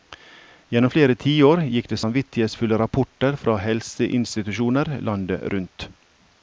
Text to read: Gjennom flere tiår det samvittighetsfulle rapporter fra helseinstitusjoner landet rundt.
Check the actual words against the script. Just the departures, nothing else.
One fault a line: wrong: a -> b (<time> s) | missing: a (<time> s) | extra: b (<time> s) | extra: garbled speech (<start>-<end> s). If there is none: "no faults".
extra: gikk (1.8 s)